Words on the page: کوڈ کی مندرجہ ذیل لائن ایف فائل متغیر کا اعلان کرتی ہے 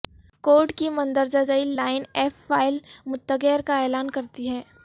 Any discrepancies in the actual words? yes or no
no